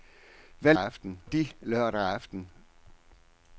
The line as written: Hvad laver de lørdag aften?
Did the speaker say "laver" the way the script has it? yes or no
no